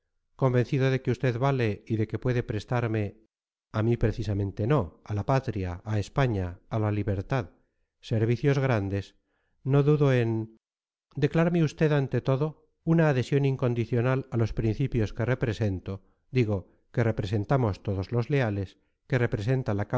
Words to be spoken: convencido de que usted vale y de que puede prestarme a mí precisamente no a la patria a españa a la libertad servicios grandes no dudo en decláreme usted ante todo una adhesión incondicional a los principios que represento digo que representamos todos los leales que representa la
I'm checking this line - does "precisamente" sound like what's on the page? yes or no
yes